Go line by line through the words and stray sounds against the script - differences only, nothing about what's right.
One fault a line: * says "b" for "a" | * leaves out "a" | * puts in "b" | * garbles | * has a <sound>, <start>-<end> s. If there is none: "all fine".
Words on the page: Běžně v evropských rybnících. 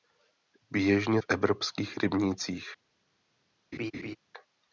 * has a laugh, 3.7-4.2 s